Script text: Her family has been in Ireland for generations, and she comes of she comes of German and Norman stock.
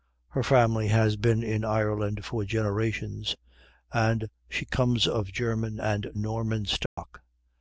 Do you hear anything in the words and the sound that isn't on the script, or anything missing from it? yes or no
yes